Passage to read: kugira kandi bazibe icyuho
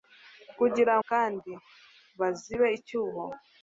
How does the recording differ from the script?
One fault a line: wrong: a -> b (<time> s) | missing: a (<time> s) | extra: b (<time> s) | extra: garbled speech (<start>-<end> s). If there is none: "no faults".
no faults